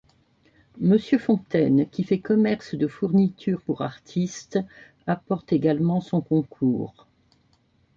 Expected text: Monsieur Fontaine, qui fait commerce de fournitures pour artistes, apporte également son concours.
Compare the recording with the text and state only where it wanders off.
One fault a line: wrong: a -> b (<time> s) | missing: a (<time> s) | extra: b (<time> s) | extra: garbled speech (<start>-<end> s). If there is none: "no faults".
no faults